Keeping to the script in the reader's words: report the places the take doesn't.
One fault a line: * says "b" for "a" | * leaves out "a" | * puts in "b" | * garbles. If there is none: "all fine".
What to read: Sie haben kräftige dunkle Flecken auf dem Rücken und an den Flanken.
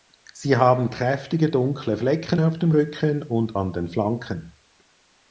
all fine